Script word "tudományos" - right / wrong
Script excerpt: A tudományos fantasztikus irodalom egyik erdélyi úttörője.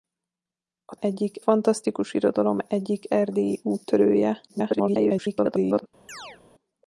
wrong